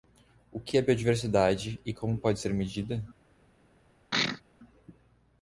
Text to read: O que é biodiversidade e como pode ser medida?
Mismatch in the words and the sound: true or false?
true